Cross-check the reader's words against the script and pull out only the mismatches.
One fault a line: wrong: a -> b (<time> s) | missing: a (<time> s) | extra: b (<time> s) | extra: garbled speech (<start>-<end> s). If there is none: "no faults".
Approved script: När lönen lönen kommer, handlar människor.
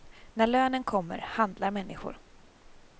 missing: lönen (0.8 s)